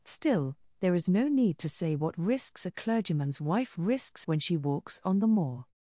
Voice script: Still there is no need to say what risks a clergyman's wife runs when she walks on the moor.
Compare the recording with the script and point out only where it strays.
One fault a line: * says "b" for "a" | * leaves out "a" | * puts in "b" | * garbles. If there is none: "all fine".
* says "risks" for "runs"